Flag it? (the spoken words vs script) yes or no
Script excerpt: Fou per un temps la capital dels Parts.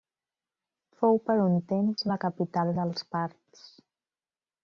no